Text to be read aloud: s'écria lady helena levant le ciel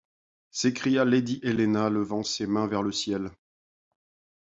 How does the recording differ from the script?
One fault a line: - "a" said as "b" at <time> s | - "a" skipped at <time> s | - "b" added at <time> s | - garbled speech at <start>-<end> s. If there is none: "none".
- "ses mains vers" added at 2.2 s